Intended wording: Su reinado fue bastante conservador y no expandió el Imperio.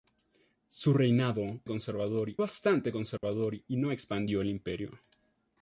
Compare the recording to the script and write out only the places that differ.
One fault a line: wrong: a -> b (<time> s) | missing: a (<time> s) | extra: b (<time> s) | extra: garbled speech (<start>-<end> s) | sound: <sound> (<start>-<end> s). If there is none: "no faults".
wrong: fue -> conservador (1.7 s)
sound: dropout (3.2-3.2 s)